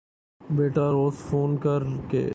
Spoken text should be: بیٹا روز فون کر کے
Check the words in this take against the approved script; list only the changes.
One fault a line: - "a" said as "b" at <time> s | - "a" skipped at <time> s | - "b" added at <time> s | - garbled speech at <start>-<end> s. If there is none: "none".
none